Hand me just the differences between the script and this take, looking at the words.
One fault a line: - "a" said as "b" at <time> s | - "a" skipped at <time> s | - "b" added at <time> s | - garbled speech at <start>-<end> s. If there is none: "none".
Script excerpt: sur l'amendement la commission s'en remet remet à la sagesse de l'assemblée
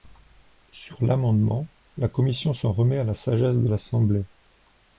- "remet" skipped at 3.0 s